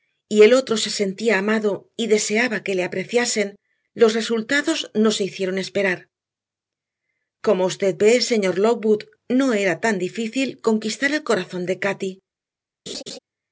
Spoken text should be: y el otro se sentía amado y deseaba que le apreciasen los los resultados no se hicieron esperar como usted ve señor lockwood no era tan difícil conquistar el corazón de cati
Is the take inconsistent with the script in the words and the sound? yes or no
yes